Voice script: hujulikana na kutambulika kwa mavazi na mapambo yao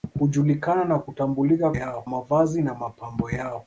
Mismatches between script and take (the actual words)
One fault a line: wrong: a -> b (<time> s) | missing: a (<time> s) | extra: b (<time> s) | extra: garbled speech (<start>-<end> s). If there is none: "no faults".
wrong: kwa -> yao (1.7 s)